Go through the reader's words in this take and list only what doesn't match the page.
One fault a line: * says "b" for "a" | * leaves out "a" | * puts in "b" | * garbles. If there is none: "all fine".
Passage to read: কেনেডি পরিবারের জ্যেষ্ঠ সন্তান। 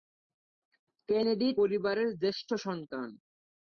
all fine